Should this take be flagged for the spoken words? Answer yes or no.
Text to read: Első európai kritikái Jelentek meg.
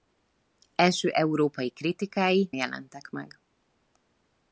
no